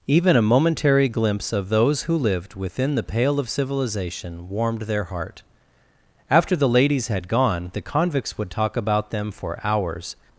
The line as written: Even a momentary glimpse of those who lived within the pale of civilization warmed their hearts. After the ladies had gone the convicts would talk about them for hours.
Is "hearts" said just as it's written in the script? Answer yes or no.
no